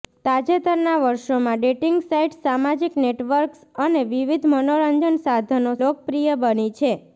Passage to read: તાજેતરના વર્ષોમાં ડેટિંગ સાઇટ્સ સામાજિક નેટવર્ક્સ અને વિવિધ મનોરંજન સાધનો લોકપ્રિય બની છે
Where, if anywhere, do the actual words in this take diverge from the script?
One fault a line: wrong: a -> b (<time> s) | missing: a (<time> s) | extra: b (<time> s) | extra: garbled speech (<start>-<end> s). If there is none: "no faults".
no faults